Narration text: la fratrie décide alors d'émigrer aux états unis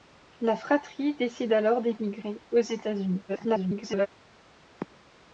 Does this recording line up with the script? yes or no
no